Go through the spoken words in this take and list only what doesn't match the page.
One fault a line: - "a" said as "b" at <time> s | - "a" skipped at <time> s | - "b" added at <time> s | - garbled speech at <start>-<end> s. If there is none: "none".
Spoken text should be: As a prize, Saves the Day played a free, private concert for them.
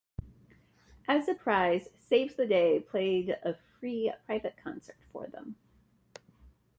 none